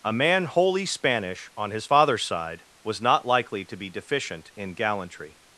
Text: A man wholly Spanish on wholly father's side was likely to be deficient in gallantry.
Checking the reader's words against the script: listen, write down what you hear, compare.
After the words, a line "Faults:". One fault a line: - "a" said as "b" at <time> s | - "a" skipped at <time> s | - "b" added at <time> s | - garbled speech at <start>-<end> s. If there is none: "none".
A man wholly Spanish on his father's side was not likely to be deficient in gallantry.
Faults:
- "wholly" said as "his" at 1.7 s
- "not" added at 3.0 s